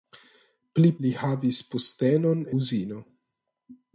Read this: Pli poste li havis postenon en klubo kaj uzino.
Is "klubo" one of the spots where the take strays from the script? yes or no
yes